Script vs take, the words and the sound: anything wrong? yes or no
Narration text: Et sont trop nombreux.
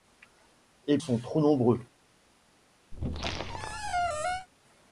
yes